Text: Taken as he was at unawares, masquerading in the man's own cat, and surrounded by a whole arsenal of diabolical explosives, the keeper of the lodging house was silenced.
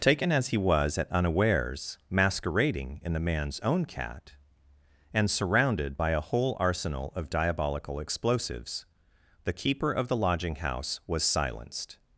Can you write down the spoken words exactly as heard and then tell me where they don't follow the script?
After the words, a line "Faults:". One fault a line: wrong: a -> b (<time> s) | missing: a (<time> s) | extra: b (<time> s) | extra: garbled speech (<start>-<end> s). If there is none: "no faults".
Taken as he was at unawares, masquerading in the man's own cat, and surrounded by a whole arsenal of diabolical explosives, the keeper of the lodging house was silenced.
Faults:
no faults